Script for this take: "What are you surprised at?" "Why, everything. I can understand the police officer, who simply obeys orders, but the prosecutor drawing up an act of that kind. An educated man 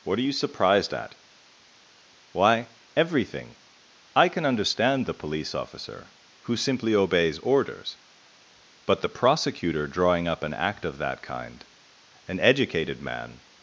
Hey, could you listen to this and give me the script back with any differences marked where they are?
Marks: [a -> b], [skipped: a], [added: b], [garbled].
"What are you surprised at?" "Why, everything. I can understand the police officer, who simply obeys orders, but the prosecutor drawing up an act of that kind. An educated man